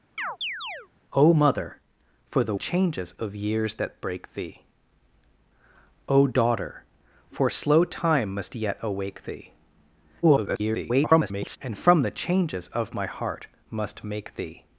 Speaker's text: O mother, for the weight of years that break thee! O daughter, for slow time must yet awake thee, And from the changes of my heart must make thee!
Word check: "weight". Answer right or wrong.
wrong